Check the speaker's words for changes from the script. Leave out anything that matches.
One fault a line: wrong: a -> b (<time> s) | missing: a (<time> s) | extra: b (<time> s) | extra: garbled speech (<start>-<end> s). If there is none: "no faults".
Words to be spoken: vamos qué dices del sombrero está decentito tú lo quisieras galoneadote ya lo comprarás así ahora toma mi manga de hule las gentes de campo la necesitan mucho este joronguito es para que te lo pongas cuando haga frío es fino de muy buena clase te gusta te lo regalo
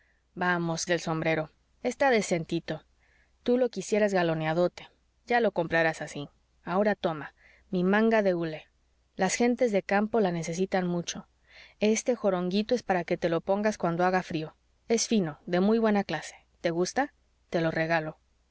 missing: qué dices (0.9 s)